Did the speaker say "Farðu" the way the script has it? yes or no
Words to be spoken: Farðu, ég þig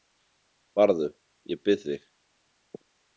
yes